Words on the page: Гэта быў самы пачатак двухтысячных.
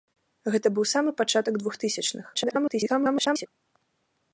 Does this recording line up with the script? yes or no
no